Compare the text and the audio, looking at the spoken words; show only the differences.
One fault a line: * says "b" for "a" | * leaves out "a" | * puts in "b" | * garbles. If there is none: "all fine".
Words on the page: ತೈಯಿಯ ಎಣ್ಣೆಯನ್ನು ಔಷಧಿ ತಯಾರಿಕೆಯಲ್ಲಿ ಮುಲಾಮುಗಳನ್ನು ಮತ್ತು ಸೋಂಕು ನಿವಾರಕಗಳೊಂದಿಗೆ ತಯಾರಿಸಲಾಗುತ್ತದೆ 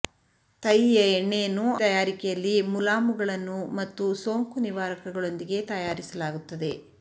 * leaves out "ಔಷಧಿ"